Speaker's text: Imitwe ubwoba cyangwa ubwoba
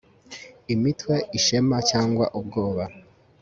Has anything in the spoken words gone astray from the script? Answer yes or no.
yes